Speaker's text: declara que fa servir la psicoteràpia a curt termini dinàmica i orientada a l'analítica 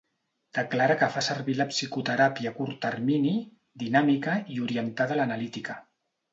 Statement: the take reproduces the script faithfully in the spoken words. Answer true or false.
true